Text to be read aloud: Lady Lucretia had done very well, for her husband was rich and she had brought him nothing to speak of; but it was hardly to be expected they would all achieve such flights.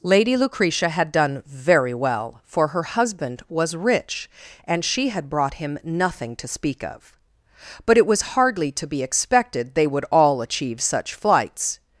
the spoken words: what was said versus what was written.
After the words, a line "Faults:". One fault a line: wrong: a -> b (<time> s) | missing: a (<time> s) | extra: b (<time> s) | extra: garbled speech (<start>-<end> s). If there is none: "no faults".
Lady Lucretia had done very well, for her husband was rich and she had brought him nothing to speak of; but it was hardly to be expected they would all achieve such flights.
Faults:
no faults